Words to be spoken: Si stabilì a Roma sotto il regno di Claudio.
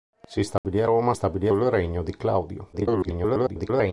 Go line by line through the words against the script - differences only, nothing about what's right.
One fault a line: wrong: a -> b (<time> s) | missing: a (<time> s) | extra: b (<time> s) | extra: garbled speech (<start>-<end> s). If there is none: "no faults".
wrong: sotto -> stabilì (1.1 s)
extra: garbled speech (2.7-3.9 s)